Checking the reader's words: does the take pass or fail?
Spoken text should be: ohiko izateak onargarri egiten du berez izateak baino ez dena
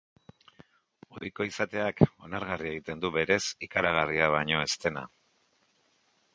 fail